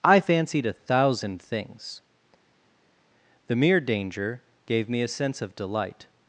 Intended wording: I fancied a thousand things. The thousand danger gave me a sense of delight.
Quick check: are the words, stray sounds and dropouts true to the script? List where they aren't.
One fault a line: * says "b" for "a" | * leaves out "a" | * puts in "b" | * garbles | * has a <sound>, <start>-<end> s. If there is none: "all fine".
* says "mere" for "thousand"